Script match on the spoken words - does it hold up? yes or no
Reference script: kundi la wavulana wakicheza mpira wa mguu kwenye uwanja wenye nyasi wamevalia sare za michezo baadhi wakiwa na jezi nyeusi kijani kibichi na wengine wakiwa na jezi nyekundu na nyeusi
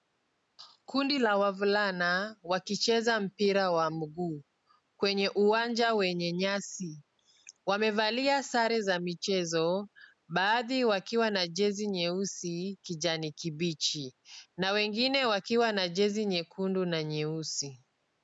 yes